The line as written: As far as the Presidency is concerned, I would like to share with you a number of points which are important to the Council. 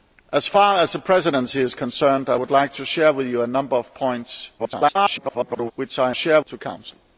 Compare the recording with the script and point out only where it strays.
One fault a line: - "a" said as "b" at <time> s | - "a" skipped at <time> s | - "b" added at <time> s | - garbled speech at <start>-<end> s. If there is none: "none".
- garbled speech at 4.6-5.7 s
- "important" said as "share" at 6.1 s